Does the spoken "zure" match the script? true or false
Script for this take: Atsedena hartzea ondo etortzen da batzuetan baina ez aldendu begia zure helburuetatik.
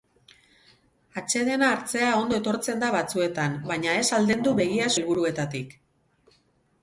false